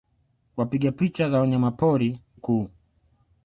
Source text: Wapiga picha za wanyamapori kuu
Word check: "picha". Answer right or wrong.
right